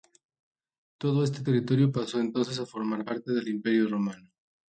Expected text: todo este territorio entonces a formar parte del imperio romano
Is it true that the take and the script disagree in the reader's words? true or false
true